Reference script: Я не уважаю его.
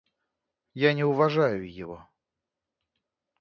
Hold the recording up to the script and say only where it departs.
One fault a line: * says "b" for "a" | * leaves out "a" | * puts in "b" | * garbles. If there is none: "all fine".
all fine